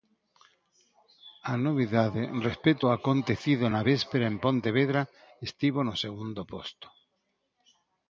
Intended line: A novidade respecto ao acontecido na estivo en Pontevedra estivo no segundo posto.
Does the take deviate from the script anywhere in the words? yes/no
yes